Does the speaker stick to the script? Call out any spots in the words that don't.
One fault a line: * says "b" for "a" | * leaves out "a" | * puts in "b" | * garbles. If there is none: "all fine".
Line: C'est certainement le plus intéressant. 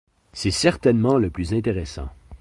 all fine